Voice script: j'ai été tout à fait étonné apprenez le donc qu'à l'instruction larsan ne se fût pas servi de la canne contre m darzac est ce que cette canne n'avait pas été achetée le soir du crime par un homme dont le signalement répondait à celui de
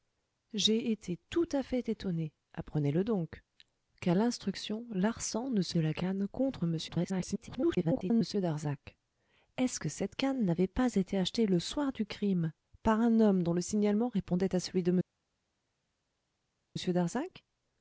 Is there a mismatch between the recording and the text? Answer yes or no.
yes